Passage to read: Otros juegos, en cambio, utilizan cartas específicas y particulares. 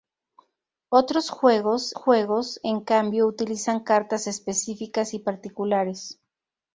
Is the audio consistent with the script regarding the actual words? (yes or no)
no